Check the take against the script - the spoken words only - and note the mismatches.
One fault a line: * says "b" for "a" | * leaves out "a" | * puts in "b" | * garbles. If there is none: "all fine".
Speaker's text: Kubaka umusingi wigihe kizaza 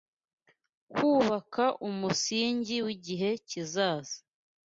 all fine